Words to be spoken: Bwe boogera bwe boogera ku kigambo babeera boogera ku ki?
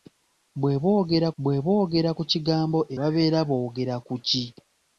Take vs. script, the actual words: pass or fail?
pass